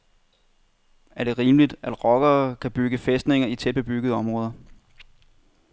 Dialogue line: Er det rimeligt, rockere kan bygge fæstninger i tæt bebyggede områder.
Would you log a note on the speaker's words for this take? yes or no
yes